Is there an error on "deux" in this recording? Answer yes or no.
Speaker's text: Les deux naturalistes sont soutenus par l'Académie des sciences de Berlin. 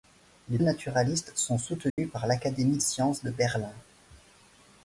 yes